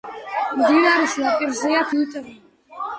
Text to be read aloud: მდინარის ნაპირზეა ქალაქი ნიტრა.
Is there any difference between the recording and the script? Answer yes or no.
yes